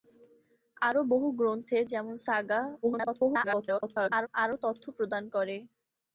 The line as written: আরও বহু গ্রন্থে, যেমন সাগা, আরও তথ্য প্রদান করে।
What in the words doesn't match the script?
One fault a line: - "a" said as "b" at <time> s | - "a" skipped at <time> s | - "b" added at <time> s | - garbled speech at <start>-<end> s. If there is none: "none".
- garbled speech at 2.8-4.3 s